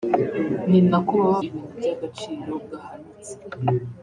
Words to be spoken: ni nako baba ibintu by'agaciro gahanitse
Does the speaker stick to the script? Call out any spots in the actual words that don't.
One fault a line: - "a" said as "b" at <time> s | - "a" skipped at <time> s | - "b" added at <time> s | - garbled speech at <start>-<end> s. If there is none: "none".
none